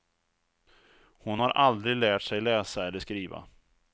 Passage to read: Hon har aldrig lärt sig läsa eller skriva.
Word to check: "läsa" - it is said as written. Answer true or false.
true